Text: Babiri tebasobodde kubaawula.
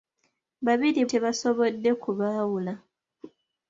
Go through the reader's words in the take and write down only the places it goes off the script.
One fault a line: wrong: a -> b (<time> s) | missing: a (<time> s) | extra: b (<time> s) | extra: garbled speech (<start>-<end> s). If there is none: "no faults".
no faults